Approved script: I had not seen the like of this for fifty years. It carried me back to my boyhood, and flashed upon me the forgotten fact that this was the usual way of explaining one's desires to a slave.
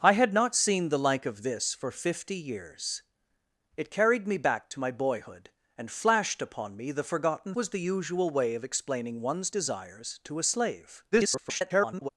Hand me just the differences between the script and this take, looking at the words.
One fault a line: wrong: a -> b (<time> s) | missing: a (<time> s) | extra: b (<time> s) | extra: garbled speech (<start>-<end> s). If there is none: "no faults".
missing: fact that this (7.5 s)
extra: garbled speech (11.1-12.1 s)